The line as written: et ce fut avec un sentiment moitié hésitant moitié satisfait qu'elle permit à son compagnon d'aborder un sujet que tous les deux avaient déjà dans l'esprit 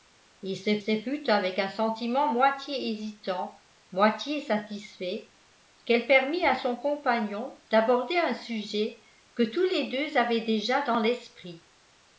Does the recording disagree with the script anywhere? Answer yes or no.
yes